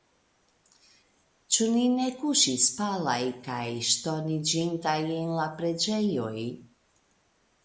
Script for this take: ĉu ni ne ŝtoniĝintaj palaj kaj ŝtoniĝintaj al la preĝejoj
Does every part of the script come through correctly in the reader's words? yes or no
no